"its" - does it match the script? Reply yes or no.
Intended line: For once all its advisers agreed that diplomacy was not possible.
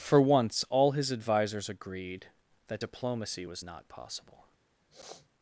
no